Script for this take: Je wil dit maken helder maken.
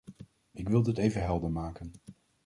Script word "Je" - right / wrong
wrong